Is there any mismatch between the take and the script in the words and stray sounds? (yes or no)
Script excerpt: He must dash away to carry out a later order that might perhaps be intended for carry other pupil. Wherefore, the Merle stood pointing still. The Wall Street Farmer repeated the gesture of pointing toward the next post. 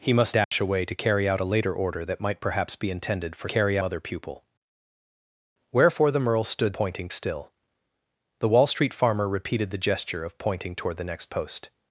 yes